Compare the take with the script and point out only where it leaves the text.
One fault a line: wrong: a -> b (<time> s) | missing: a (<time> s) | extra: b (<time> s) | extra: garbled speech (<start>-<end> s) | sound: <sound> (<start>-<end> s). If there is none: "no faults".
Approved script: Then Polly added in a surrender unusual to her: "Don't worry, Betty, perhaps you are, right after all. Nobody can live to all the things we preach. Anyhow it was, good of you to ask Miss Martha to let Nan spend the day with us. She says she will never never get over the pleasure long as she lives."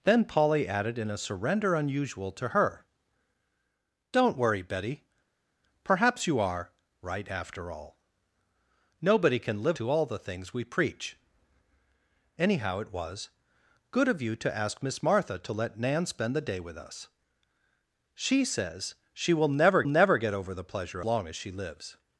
no faults